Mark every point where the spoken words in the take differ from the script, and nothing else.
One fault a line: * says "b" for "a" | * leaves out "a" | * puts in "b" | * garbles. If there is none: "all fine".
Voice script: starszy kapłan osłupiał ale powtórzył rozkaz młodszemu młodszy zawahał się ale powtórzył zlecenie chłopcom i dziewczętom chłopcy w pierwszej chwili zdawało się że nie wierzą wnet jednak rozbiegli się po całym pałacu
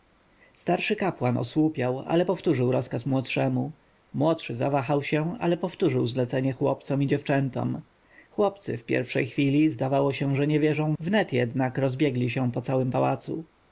all fine